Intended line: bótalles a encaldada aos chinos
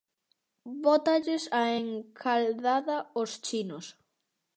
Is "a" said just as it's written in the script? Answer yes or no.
yes